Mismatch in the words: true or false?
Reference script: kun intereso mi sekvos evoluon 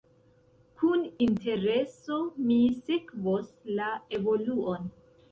true